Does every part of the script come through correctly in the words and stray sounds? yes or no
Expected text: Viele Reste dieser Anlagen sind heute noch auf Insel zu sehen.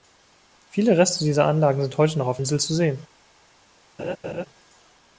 no